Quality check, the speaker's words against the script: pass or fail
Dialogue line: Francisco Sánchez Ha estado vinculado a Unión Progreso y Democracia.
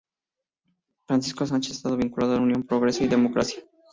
pass